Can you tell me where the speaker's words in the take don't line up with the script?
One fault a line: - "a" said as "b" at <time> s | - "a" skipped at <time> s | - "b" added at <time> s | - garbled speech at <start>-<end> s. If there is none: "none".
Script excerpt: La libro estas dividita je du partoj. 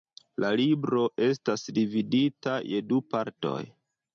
none